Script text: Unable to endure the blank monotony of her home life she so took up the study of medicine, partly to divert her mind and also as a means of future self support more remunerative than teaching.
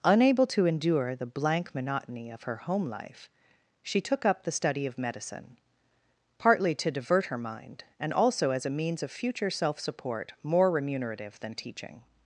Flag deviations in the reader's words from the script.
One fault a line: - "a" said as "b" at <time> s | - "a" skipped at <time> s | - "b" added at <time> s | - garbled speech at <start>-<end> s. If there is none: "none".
- "so" skipped at 4.0 s